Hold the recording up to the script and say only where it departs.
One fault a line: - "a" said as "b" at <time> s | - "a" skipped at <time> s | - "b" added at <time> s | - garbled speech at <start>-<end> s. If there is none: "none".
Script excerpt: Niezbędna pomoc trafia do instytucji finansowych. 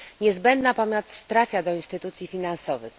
none